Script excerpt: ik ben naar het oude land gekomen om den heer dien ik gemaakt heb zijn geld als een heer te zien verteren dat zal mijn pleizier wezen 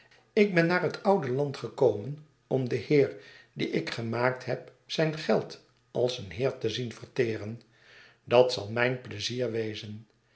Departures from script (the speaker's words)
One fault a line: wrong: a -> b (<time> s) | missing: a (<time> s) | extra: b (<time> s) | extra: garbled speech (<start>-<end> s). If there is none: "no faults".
no faults